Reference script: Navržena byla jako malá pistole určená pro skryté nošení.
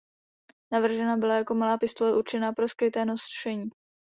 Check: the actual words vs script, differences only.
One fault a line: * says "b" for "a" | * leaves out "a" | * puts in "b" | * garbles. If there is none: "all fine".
all fine